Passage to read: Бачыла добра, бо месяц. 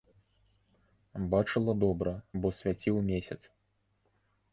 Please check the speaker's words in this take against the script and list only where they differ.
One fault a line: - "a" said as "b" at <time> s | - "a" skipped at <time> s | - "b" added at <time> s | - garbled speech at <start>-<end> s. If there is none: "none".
- "свяціў" added at 2.6 s